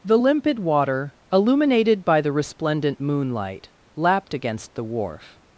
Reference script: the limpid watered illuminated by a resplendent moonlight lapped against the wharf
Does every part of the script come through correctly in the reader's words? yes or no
no